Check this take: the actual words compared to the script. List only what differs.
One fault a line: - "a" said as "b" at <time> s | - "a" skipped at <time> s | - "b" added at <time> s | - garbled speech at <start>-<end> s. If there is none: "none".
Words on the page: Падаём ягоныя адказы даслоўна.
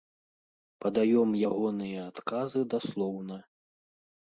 none